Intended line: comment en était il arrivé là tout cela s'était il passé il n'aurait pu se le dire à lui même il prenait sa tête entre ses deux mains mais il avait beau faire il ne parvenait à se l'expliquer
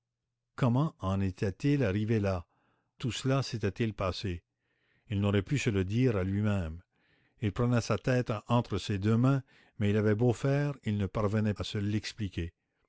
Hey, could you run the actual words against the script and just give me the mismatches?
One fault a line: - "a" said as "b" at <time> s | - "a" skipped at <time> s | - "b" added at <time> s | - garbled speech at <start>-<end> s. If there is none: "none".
none